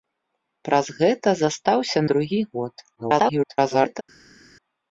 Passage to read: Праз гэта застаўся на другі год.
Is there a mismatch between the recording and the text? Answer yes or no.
yes